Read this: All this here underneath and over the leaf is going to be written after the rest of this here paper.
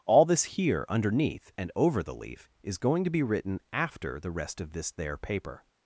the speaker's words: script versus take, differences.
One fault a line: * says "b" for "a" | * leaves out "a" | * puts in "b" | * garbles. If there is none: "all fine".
* says "there" for "here"